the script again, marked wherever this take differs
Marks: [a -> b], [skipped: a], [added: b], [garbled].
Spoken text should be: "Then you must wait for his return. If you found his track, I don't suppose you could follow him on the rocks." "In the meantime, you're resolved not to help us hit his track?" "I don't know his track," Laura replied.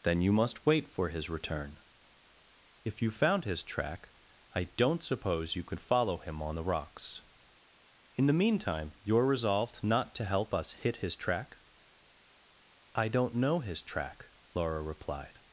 "Then you must wait for his return. If you found his track, I don't suppose you could follow him on the rocks." "In the meantime, you're resolved not to help us hit his track?" "I don't know his track," Laura replied.